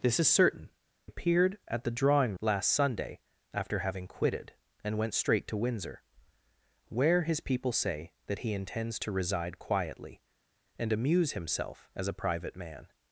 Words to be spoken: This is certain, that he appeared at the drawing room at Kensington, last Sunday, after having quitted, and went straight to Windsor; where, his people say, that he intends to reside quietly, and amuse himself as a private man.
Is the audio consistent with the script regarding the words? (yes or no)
no